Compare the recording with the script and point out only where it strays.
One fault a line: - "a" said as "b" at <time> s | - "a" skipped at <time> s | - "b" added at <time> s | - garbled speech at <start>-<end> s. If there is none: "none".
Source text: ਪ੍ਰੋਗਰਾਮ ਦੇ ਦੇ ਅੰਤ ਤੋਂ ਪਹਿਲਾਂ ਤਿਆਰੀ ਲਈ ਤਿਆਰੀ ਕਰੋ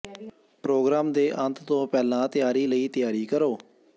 - "ਦੇ" skipped at 1.3 s